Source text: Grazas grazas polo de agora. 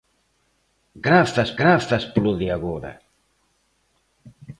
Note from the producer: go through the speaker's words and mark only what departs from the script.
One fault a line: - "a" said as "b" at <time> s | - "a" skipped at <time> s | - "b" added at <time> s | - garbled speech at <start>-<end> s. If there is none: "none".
none